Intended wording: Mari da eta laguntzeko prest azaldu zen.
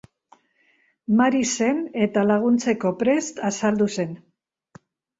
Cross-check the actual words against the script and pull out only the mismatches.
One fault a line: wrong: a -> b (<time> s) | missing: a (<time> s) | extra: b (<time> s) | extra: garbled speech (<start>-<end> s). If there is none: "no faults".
wrong: da -> zen (1.6 s)